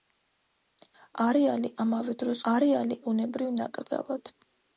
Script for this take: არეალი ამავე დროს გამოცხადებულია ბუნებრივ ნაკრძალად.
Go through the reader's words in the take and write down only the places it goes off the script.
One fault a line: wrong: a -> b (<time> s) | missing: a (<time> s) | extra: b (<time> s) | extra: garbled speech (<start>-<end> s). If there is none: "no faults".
wrong: გამოცხადებულია -> არეალი (2.5 s)